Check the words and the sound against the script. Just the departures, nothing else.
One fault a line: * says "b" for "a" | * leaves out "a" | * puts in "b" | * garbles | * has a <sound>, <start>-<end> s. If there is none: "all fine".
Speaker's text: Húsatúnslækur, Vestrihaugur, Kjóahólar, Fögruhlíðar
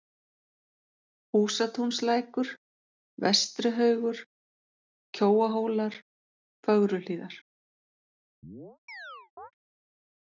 * has a chirp, 8.4-9.5 s